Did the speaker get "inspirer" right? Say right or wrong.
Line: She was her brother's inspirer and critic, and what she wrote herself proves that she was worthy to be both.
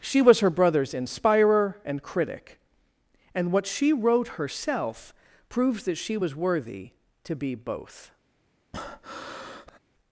right